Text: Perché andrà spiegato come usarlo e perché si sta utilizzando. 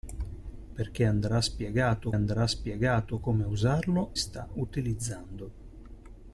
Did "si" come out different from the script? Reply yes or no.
yes